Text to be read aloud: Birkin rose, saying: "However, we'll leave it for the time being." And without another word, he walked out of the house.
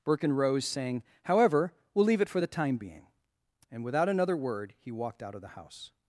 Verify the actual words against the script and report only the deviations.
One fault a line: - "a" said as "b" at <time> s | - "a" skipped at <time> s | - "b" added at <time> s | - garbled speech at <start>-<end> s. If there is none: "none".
none